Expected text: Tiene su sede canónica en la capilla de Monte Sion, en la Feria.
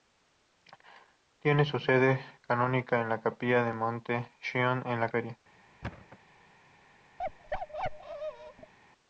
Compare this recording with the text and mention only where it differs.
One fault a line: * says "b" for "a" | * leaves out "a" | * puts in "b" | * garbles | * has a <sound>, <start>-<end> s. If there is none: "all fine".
* has a thud, 5.8-6.2 s
* has a bark, 7.2-8.7 s